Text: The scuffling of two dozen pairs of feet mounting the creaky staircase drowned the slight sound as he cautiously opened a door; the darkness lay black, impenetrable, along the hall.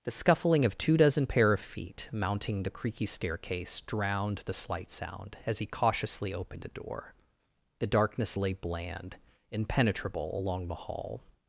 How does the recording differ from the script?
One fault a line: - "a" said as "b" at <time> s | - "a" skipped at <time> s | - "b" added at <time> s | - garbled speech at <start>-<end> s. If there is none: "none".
- "pairs" said as "pair" at 1.3 s
- "black" said as "bland" at 8.5 s